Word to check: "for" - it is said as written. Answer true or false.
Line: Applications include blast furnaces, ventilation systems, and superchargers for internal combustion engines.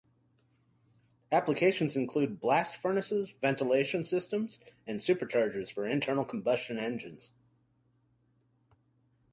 true